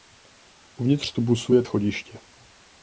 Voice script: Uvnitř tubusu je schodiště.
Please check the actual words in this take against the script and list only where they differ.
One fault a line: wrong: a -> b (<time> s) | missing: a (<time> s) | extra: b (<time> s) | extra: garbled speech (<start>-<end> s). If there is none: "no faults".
no faults